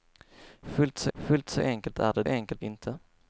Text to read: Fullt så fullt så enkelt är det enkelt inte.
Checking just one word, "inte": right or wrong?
right